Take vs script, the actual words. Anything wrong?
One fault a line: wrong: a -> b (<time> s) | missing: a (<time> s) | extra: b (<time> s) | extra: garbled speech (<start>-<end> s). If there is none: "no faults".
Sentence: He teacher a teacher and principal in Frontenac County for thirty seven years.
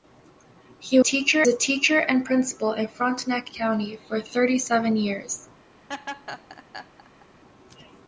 no faults